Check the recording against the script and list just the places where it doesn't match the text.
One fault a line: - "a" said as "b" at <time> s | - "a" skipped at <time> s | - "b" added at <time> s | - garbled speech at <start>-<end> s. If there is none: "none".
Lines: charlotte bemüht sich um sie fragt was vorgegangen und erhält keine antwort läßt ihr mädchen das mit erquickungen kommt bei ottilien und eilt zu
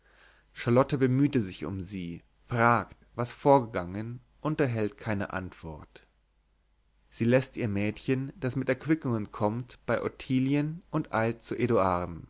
- "sie" added at 7.1 s